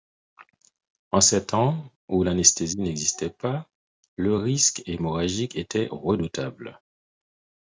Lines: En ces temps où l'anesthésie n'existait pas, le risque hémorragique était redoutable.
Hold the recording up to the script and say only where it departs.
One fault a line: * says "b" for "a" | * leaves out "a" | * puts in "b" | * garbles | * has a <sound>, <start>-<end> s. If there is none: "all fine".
all fine